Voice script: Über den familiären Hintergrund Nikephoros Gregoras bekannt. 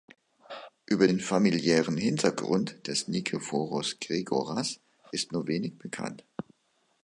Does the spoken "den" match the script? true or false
true